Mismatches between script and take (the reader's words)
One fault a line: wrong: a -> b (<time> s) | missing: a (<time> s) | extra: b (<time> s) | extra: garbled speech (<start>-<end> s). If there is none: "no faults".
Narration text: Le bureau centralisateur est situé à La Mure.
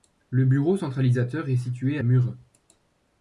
missing: La (2.0 s)